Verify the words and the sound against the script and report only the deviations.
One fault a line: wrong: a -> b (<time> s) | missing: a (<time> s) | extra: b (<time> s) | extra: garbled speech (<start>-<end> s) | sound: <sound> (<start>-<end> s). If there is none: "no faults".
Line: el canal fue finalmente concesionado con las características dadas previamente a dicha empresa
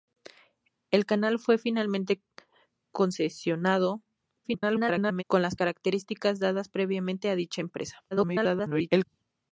extra: garbled speech (4.4-5.2 s)
extra: garbled speech (8.1-9.1 s)